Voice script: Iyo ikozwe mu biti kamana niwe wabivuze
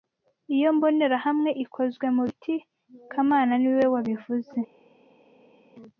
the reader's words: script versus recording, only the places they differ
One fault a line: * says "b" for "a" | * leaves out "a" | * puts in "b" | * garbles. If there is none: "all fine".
* puts in "mbonerahamwe"